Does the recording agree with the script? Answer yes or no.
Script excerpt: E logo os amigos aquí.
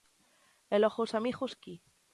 yes